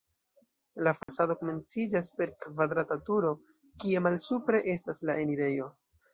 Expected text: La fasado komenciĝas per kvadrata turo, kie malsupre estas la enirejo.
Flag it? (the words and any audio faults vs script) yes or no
yes